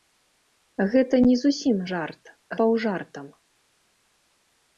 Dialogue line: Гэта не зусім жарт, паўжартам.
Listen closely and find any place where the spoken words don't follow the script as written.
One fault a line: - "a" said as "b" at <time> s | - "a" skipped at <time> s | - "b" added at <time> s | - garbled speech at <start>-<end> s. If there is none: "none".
none